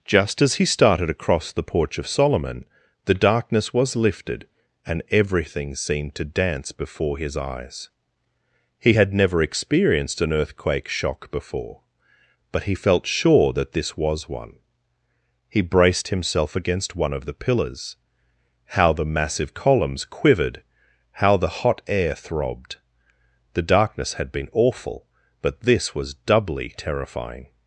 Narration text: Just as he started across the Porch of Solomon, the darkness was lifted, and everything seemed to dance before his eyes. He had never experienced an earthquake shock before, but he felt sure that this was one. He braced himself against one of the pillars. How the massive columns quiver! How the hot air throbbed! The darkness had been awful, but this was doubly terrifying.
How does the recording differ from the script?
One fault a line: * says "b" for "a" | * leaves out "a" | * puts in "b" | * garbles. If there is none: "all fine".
* says "quivered" for "quiver"